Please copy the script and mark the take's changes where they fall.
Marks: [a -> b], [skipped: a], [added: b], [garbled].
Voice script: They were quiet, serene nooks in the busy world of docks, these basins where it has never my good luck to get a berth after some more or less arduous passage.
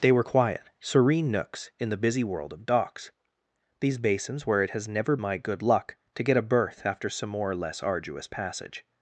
They were quiet, serene nooks in the busy world of docks, these basins where it has never my good luck to get a berth after some more or less arduous passage.